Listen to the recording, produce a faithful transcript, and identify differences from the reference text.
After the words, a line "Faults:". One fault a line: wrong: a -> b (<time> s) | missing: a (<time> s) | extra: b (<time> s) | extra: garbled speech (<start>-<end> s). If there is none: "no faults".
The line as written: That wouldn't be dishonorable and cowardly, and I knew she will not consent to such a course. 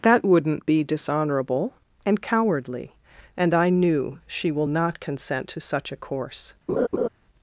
That wouldn't be dishonorable and cowardly, and I knew she will not consent to such a course.
Faults:
no faults